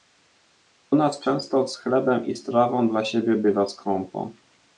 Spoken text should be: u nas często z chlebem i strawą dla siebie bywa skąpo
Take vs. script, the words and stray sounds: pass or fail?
pass